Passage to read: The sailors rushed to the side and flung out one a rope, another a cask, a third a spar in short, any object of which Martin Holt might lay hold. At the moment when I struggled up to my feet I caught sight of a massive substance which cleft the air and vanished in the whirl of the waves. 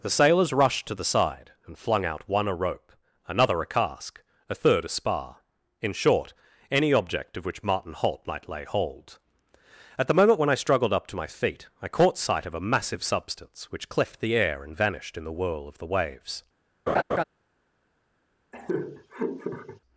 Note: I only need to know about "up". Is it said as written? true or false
true